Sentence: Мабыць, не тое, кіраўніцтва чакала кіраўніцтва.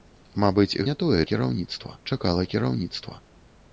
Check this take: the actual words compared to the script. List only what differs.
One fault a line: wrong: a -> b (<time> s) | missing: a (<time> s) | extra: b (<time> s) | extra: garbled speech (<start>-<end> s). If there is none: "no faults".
no faults